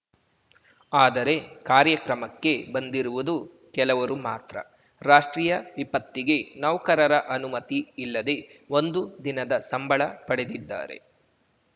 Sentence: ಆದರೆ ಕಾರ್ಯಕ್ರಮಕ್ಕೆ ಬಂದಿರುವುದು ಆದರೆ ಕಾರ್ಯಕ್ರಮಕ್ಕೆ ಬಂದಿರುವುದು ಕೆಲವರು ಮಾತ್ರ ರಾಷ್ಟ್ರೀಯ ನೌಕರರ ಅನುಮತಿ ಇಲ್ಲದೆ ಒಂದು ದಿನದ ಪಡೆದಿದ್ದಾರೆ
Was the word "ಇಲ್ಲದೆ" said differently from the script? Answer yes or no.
no